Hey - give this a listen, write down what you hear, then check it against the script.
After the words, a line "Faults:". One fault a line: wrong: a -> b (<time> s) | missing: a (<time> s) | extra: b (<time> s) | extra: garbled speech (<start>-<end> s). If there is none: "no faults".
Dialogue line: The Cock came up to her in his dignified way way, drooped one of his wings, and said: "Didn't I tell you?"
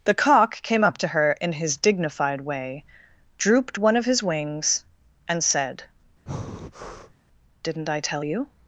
The Cock came up to her in his dignified way, drooped one of his wings, and said: "Didn't I tell you?"
Faults:
missing: way (2.9 s)